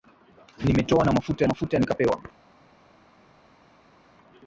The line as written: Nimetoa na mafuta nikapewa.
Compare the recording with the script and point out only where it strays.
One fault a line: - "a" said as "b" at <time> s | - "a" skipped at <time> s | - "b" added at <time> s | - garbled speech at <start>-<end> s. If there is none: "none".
- "mafuta" added at 1.4 s